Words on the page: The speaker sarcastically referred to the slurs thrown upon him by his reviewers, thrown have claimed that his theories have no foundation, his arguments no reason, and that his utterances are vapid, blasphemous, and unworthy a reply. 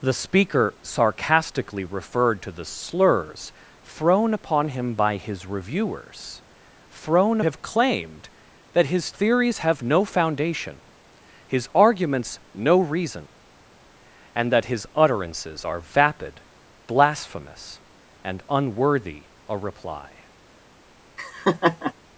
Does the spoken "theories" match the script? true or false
true